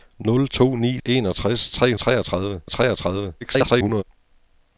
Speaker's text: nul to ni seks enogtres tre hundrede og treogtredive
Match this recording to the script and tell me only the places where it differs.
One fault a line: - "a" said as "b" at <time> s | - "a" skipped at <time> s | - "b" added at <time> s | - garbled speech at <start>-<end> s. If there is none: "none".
- "seks" skipped at 1.0 s
- "hundrede" said as "treogtredive" at 2.0 s
- garbled speech at 3.4-4.0 s